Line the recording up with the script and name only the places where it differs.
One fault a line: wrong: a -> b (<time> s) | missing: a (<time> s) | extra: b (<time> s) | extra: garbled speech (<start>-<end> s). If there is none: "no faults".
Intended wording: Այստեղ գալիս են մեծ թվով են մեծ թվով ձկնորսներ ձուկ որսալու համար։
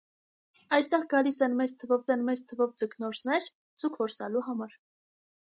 no faults